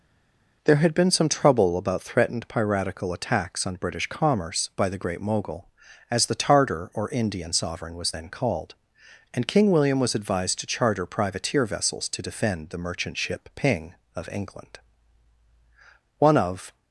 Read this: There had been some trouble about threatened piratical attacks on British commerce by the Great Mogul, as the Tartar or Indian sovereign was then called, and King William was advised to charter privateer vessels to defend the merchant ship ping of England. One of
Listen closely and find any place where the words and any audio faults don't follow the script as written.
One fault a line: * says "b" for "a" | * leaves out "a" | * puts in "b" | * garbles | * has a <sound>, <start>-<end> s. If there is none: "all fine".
all fine